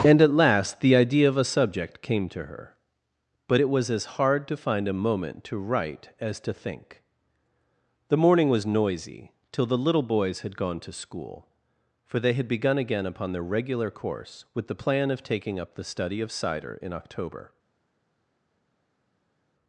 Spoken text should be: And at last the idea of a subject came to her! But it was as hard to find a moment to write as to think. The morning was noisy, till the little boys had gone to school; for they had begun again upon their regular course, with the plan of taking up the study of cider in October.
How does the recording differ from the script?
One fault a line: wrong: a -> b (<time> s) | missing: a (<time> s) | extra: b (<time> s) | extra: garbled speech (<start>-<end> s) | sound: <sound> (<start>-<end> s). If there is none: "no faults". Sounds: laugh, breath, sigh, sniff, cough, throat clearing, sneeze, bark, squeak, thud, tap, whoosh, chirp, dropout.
no faults